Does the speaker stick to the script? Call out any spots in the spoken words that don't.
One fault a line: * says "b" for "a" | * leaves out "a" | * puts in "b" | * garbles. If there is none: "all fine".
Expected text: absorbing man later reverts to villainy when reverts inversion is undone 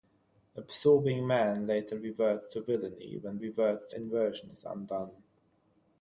all fine